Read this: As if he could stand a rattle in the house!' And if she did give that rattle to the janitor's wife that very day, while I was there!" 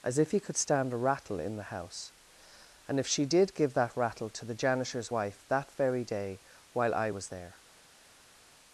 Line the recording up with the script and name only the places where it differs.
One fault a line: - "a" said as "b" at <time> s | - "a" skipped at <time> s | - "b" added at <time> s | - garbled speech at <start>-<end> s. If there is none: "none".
none